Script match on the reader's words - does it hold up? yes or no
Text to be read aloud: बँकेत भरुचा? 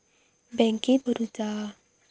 yes